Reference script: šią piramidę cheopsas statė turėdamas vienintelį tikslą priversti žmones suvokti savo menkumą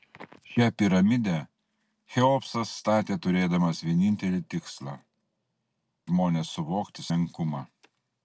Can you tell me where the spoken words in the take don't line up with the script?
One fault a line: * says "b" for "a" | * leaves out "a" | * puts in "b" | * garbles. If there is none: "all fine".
* leaves out "priversti"
* leaves out "savo"